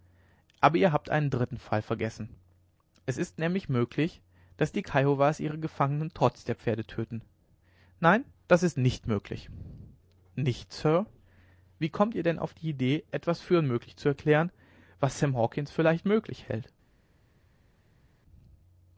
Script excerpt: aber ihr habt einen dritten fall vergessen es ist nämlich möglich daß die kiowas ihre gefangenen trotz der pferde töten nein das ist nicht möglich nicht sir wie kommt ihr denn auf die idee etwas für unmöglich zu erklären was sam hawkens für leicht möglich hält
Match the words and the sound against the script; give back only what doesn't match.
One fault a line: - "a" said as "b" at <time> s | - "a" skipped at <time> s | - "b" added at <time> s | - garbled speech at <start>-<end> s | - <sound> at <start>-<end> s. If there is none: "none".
none